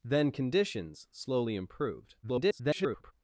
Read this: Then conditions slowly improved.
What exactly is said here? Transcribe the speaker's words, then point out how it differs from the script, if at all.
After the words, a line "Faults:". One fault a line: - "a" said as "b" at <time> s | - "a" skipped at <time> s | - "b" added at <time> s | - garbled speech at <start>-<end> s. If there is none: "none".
Then conditions slowly improved. [garbled]
Faults:
- garbled speech at 2.2-3.1 s